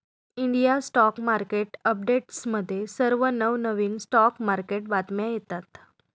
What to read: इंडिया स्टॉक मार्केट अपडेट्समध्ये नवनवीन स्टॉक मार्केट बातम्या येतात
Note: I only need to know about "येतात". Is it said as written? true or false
true